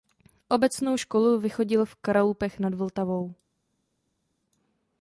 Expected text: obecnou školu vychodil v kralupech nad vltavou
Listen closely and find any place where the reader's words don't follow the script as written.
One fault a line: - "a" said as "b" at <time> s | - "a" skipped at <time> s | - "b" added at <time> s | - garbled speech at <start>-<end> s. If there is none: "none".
none